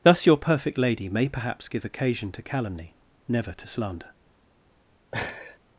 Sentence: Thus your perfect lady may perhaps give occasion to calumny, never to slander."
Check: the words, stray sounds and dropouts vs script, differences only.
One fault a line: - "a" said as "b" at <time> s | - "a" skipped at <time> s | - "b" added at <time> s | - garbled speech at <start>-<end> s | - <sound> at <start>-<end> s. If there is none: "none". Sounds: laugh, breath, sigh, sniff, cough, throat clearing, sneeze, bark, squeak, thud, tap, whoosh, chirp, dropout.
- laugh at 5.1-5.6 s